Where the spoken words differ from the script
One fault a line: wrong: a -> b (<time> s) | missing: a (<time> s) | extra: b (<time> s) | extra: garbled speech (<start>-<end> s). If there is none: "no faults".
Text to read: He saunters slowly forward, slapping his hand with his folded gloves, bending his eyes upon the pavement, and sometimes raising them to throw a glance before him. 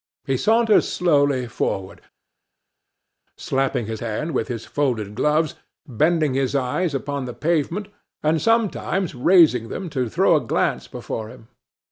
no faults